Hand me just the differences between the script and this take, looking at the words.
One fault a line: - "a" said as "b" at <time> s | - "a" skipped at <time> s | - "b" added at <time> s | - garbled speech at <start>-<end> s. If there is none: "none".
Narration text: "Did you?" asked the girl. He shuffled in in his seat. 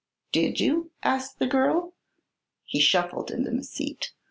none